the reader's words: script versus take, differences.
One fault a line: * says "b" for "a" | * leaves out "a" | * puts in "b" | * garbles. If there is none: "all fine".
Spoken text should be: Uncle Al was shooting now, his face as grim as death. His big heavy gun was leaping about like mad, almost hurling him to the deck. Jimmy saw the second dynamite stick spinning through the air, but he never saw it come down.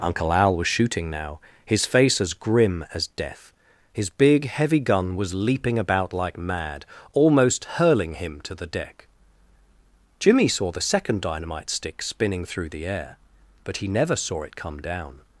all fine